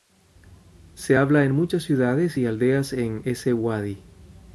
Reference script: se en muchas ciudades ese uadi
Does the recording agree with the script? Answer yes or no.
no